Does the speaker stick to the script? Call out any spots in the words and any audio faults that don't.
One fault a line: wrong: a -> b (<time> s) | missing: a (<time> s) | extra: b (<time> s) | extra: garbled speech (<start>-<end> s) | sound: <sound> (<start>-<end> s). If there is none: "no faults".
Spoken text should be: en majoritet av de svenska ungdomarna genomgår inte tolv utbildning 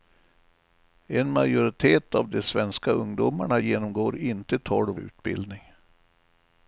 no faults